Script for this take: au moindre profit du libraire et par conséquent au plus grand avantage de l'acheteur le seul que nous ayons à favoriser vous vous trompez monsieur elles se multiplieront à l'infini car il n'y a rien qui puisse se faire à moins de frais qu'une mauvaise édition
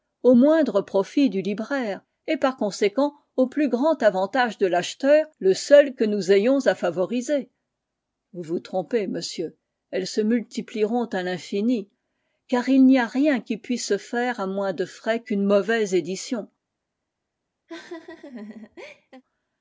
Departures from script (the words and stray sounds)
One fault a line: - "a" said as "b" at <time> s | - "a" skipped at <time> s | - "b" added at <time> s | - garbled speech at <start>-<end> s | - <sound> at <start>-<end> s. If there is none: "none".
- laugh at 17.7-19.2 s